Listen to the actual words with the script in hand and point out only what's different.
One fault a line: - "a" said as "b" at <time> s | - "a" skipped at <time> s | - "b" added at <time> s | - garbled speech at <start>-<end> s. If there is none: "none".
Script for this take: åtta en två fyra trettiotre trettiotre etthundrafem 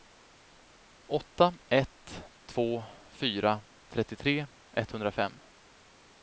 - "en" said as "ett" at 1.7 s
- "trettiotre" skipped at 4.5 s